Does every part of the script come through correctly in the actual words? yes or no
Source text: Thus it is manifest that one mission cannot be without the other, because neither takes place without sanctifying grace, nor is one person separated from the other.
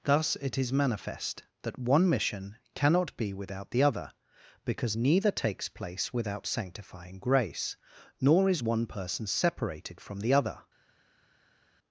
yes